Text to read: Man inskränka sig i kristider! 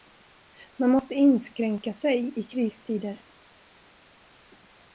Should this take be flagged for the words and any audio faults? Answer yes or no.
yes